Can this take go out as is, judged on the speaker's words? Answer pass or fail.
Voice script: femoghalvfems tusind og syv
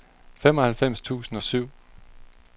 pass